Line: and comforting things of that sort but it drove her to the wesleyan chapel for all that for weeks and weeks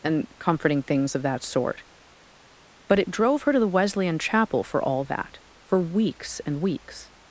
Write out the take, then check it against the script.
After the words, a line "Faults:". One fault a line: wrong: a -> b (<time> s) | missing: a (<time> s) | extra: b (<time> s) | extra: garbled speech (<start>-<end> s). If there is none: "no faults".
and comforting things of that sort but it drove her to the wesleyan chapel for all that for weeks and weeks
Faults:
no faults